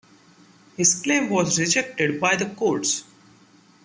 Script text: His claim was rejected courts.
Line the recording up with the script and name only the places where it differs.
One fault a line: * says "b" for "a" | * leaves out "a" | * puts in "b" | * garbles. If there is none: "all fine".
* puts in "by the"